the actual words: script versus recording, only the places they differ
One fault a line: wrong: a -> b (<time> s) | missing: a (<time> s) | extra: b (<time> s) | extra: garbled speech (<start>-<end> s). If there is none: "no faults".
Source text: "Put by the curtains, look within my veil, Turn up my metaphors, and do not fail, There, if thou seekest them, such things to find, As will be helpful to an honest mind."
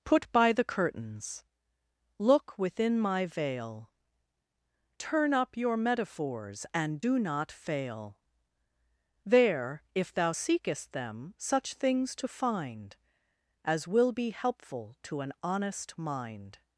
wrong: my -> your (5.6 s)